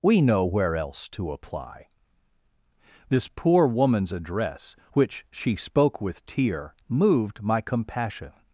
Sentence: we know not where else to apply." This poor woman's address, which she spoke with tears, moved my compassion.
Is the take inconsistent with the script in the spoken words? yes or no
yes